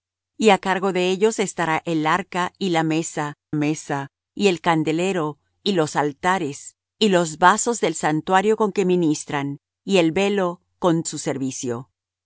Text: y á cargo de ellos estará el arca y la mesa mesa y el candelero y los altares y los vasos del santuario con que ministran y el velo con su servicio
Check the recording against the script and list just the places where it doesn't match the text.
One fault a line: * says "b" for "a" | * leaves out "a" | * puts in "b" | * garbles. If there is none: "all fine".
all fine